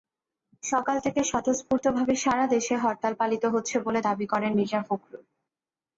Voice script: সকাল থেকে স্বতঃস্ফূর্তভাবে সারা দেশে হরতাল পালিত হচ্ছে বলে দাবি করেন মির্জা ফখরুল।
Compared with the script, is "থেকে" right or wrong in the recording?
right